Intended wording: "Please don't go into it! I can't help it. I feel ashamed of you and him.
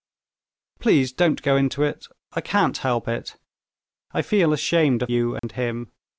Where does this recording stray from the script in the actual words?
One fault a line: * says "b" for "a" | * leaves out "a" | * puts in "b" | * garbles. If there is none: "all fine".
all fine